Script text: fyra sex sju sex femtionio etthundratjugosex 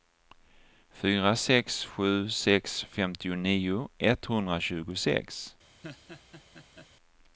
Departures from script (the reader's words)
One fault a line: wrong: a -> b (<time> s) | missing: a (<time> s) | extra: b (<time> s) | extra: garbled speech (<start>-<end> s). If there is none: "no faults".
no faults